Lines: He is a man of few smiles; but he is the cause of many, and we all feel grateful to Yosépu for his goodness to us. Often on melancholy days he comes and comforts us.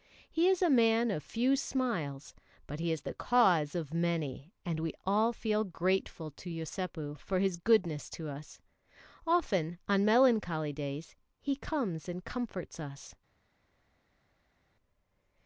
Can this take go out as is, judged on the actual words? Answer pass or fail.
pass